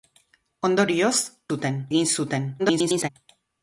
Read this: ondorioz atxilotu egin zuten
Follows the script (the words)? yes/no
no